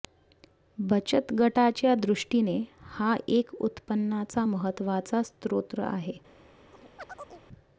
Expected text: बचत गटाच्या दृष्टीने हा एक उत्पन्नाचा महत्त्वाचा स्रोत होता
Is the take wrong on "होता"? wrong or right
wrong